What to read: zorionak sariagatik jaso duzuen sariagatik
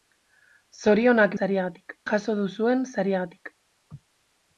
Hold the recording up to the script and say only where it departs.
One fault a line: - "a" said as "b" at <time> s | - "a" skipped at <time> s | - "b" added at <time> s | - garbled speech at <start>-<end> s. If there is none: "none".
none